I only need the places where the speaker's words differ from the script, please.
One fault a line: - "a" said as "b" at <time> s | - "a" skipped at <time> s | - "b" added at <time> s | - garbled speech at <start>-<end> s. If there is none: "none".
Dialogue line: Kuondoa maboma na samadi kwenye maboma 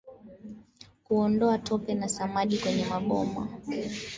- "maboma" said as "tope" at 1.6 s